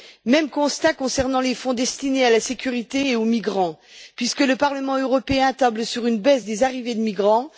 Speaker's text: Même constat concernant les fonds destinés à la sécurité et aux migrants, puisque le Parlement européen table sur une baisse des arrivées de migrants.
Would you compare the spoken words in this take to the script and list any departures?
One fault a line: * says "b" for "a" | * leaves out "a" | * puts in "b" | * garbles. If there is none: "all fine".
all fine